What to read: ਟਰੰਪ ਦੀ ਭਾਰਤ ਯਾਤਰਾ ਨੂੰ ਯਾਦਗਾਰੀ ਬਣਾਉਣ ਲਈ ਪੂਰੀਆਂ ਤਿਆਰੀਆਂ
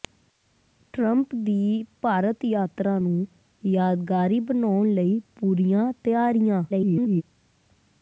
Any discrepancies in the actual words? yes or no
yes